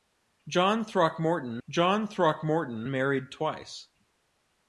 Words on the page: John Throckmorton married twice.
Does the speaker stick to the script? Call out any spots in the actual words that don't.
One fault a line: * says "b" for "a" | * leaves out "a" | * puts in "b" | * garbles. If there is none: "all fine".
* puts in "john Throckmorton"